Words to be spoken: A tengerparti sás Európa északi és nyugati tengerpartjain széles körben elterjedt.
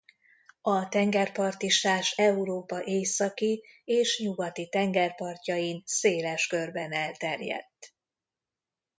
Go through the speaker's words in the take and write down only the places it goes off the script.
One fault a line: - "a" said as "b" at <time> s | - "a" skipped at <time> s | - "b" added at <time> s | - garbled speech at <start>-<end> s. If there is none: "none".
none